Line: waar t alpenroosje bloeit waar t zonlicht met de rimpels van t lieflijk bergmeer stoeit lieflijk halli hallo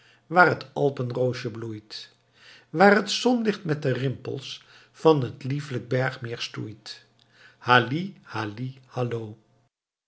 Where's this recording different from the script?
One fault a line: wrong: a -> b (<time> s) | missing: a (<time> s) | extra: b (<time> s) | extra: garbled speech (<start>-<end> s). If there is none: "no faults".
wrong: lieflijk -> halli (7.6 s)